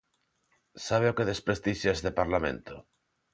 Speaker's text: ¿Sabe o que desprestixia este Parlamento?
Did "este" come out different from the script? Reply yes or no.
no